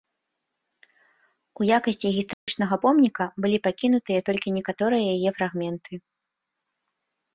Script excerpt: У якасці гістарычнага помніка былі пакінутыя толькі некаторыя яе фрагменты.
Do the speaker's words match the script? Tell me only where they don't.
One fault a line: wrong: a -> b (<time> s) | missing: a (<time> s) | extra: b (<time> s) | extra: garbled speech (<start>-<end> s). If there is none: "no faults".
no faults